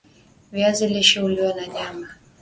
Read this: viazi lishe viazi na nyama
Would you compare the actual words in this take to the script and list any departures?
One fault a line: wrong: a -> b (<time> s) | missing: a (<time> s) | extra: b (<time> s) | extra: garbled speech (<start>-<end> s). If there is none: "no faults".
wrong: viazi -> huliwa (1.2 s)